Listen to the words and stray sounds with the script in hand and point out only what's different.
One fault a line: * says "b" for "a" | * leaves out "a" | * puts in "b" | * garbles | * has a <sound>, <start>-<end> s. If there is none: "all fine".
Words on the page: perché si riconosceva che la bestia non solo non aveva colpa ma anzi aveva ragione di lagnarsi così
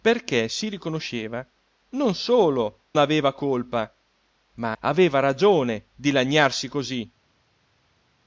* leaves out "che la bestia"
* leaves out "non"
* leaves out "anzi"